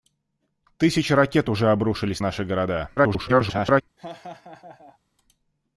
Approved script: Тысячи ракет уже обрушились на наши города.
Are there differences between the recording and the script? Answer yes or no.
yes